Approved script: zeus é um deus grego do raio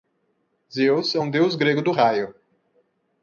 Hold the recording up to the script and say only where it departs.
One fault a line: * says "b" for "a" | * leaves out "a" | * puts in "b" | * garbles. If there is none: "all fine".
all fine